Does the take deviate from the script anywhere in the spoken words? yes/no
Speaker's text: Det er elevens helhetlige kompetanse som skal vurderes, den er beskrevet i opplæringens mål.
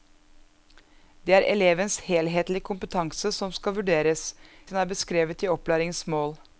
no